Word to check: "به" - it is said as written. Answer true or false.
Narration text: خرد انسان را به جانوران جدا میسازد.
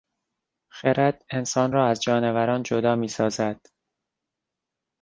false